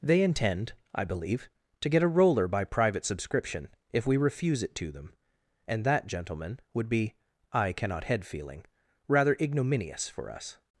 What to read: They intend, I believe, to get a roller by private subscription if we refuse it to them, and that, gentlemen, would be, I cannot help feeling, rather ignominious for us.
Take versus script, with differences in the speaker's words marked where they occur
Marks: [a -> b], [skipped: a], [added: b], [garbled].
They intend, I believe, to get a roller by private subscription if we refuse it to them, and that, gentlemen, would be, I cannot [help -> head] feeling, rather ignominious for us.